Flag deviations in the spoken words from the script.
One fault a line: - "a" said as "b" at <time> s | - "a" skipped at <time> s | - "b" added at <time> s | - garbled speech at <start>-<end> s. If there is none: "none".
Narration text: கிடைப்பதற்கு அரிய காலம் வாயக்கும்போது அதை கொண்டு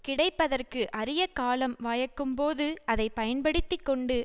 - "பயன்படுத்தி" added at 3.1 s